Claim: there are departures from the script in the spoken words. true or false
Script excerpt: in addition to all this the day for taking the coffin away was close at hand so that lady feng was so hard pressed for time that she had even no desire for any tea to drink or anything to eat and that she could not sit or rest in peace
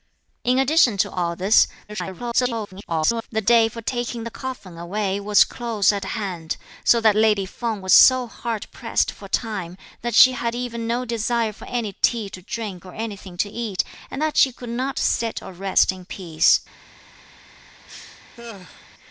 true